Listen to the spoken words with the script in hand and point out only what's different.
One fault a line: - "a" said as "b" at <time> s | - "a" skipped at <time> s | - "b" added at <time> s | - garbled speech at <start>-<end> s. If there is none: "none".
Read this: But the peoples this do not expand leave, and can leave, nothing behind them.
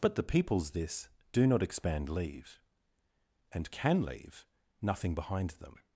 none